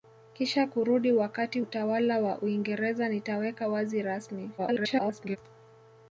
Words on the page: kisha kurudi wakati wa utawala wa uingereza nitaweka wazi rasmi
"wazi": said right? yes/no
yes